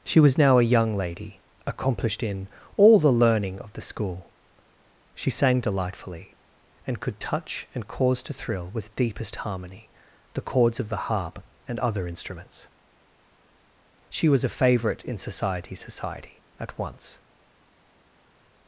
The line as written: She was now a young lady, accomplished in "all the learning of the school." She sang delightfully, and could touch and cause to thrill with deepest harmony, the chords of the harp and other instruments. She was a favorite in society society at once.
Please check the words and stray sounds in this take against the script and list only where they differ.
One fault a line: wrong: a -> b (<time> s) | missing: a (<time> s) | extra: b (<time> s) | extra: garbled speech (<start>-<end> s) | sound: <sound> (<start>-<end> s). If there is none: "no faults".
no faults